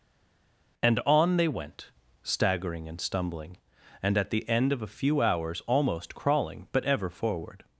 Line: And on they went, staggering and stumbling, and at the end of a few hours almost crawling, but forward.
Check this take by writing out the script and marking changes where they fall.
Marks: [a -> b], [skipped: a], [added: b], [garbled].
And on they went, staggering and stumbling, and at the end of a few hours almost crawling, but [added: ever] forward.